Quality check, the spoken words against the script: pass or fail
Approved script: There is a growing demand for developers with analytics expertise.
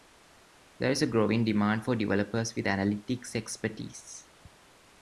pass